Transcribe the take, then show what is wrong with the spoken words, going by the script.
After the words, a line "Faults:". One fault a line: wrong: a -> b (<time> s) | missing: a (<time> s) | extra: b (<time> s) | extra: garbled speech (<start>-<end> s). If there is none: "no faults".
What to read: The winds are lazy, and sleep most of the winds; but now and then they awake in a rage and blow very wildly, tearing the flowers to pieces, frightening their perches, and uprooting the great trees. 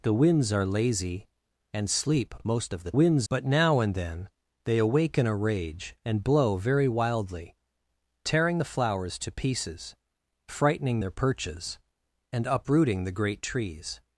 The winds are lazy, and sleep most of the winds; but now and then they awake in a rage and blow very wildly, tearing the flowers to pieces, frightening their perches, and uprooting the great trees.
Faults:
no faults